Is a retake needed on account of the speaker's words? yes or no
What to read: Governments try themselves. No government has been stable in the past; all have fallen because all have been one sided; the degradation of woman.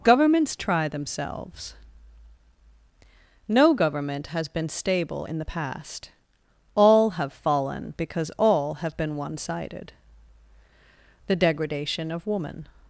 no